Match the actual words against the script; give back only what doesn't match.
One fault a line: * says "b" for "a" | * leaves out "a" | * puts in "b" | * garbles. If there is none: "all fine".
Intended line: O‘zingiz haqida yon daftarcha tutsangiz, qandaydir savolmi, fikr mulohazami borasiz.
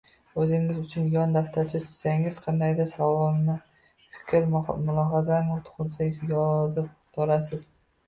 * says "uchun" for "haqida"
* puts in "tug‘ilsa yozib"